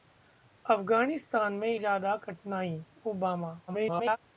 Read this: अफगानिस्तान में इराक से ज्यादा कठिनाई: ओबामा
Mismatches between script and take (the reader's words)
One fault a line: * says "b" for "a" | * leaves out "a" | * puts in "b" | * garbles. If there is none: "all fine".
* leaves out "इराक से"
* garbles